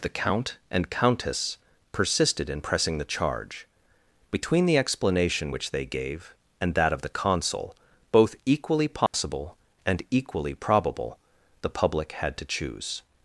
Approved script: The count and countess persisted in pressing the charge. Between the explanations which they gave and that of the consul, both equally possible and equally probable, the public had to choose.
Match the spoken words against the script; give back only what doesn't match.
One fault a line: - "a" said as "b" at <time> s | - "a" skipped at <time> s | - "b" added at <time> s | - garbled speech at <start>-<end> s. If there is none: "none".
- "explanations" said as "explanation" at 4.8 s